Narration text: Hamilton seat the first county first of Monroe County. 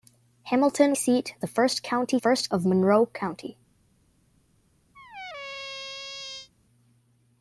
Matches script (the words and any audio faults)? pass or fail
fail